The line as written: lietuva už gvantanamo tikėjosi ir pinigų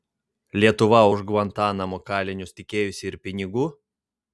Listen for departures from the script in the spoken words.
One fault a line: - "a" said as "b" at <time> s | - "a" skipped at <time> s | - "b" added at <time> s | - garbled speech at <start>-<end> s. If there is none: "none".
- "kalinius" added at 2.1 s